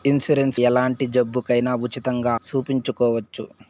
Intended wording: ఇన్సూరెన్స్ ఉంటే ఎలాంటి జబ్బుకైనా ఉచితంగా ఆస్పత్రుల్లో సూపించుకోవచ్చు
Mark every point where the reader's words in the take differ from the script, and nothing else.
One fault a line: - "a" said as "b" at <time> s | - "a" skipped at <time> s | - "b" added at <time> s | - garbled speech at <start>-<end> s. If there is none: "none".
- "ఉంటే" skipped at 0.6 s
- "ఆస్పత్రుల్లో" skipped at 2.3 s